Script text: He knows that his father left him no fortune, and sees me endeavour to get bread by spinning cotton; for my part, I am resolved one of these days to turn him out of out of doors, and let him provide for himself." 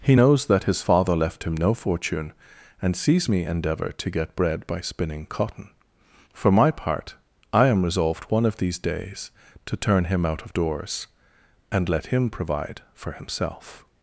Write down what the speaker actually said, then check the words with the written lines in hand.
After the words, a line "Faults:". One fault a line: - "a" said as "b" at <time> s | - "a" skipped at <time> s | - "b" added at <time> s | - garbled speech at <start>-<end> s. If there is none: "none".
He knows that his father left him no fortune, and sees me endeavour to get bread by spinning cotton; for my part, I am resolved one of these days to turn him out of doors, and let him provide for himself."
Faults:
- "out of" skipped at 10.5 s